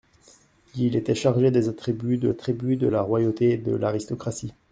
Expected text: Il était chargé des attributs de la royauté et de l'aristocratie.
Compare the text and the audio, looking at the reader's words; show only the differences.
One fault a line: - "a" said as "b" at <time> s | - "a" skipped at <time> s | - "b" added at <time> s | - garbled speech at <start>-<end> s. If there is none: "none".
- "attributs de" added at 2.3 s